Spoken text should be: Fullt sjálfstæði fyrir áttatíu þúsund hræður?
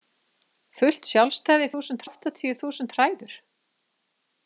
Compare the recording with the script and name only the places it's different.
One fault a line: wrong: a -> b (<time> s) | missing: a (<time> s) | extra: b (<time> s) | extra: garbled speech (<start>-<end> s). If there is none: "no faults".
wrong: fyrir -> þúsund (1.7 s)